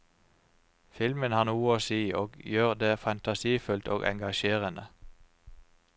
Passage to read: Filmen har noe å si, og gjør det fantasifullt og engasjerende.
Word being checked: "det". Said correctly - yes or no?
yes